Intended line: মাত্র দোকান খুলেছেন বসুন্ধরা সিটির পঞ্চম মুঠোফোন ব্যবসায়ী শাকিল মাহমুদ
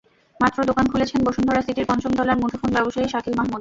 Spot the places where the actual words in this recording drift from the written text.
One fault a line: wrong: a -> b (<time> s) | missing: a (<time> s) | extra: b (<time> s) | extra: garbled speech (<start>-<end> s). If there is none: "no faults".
extra: তলার (2.2 s)